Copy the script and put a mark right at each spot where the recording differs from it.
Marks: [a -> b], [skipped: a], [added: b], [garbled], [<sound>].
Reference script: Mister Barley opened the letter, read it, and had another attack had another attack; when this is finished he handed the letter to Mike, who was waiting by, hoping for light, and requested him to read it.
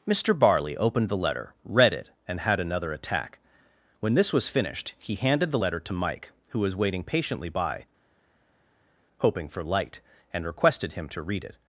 Mister Barley opened the letter, read it, and had another attack [skipped: had another attack;] when this [is -> was] finished he handed the letter to Mike, who was waiting [added: patiently] by, hoping for light, and requested him to read it.